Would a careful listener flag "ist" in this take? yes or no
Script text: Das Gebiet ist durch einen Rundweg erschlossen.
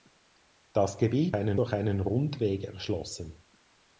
yes